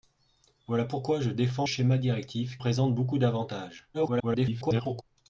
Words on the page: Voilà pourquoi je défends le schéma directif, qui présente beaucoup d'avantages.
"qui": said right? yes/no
no